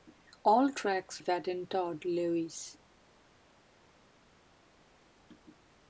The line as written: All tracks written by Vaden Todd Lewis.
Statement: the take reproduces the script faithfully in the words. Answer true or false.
false